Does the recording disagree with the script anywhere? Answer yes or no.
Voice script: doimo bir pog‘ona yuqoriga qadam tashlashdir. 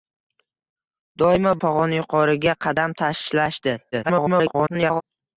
yes